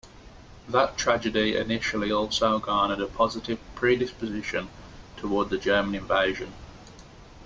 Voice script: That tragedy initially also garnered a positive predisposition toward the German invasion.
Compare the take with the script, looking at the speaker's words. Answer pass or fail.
pass